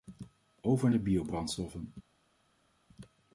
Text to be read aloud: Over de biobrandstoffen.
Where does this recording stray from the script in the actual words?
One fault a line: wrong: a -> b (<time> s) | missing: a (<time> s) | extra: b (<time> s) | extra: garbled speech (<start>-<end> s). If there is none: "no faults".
no faults